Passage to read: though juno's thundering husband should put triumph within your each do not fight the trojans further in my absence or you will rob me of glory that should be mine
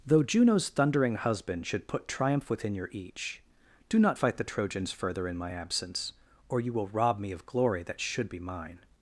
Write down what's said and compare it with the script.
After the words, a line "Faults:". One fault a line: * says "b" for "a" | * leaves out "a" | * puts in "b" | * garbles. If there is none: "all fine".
though juno's thundering husband should put triumph within your each do not fight the trojans further in my absence or you will rob me of glory that should be mine
Faults:
all fine